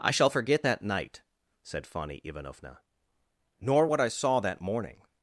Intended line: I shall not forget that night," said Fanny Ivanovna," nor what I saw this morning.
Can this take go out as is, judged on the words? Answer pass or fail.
fail